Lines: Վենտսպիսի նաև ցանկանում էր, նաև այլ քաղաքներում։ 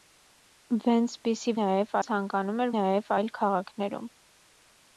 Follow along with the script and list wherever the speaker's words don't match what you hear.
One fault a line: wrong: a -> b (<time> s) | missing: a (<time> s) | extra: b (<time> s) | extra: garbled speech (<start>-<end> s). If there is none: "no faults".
no faults